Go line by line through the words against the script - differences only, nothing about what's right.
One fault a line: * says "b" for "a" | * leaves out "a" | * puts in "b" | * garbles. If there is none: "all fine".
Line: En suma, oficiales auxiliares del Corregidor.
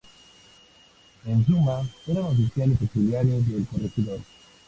* puts in "eran"